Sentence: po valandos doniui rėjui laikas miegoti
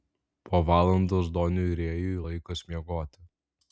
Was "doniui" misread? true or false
false